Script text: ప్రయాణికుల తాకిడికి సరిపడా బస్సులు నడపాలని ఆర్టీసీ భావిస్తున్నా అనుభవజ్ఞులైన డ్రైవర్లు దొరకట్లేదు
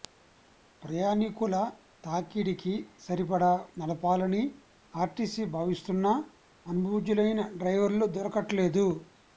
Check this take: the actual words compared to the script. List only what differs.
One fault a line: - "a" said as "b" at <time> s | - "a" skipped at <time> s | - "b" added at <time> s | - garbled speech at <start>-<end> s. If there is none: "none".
- "బస్సులు" skipped at 3.5 s